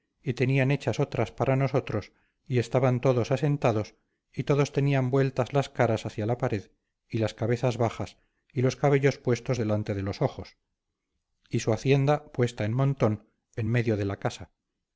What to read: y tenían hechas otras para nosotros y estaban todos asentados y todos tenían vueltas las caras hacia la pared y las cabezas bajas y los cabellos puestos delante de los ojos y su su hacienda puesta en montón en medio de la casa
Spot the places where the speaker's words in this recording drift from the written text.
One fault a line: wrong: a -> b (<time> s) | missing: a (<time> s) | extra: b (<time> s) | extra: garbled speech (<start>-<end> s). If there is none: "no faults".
missing: su (11.7 s)